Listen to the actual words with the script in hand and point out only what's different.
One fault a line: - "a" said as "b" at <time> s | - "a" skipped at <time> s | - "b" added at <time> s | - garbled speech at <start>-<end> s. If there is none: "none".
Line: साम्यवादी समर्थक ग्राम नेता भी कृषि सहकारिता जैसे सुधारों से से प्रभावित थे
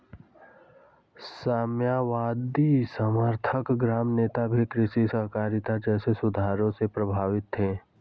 - "से" skipped at 6.9 s